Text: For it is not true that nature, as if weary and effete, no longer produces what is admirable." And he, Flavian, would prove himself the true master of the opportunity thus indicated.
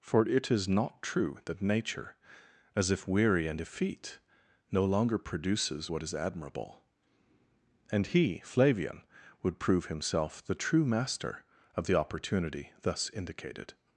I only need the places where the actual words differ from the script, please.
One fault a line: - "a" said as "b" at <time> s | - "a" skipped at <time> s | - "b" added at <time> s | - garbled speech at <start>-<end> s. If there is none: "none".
none